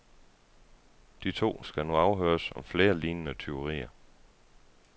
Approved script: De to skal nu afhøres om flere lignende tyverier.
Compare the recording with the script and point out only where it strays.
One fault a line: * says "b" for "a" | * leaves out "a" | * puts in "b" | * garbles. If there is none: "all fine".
all fine